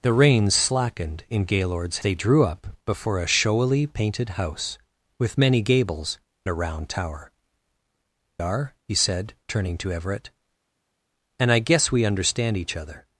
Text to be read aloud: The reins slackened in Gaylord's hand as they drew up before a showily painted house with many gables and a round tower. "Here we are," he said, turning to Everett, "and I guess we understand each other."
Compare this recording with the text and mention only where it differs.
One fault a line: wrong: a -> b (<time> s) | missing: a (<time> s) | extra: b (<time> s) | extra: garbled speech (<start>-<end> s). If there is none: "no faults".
missing: hand as (2.0 s)
missing: and (6.2 s)
missing: Here we (7.3 s)